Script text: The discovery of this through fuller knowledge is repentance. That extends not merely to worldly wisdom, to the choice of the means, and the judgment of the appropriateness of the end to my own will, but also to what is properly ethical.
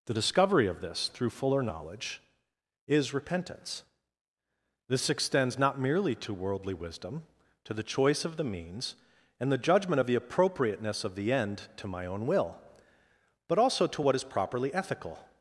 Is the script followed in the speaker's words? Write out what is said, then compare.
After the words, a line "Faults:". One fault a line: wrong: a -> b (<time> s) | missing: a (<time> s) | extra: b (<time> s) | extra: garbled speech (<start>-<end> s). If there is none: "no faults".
The discovery of this through fuller knowledge is repentance. This extends not merely to worldly wisdom, to the choice of the means, and the judgment of the appropriateness of the end to my own will, but also to what is properly ethical.
Faults:
wrong: That -> This (4.9 s)